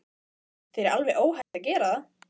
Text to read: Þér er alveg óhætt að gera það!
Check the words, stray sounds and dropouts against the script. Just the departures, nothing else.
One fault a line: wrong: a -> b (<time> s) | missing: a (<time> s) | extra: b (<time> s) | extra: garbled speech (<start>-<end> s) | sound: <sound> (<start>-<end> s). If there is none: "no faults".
sound: dropout (1.4-1.5 s)